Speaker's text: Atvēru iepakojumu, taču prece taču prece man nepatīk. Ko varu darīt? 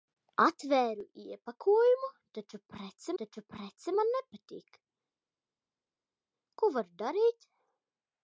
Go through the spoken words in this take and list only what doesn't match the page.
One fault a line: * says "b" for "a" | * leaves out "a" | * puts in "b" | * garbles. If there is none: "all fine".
all fine